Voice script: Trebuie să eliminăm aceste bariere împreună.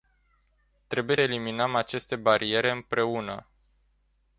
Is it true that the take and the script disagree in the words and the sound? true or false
true